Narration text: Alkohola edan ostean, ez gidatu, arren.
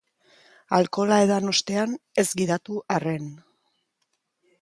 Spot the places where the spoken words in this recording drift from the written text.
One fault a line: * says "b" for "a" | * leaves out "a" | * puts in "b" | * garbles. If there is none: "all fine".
all fine